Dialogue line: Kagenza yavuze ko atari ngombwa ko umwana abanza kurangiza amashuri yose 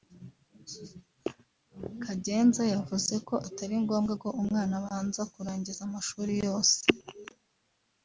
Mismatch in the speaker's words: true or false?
false